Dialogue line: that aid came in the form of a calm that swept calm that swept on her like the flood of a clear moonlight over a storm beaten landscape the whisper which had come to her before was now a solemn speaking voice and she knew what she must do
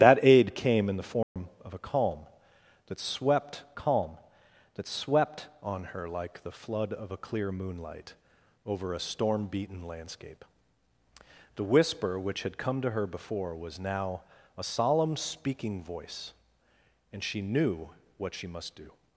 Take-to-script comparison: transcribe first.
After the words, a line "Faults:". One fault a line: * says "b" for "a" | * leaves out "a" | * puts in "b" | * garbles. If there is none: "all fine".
that aid came in the form of a calm that swept calm that swept on her like the flood of a clear moonlight over a storm beaten landscape the whisper which had come to her before was now a solemn speaking voice and she knew what she must do
Faults:
all fine